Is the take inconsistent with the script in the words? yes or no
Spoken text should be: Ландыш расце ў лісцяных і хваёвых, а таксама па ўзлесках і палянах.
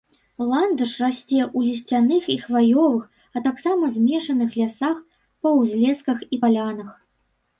yes